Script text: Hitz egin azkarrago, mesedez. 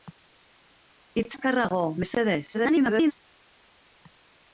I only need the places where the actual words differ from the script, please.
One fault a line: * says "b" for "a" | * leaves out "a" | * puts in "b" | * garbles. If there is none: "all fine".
* leaves out "egin"
* garbles